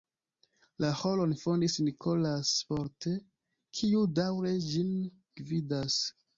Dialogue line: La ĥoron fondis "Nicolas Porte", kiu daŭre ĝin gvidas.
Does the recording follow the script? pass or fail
pass